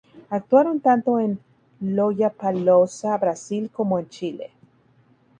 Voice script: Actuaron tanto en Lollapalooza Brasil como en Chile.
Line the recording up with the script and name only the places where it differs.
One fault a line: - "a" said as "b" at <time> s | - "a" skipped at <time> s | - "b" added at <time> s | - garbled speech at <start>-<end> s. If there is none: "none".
none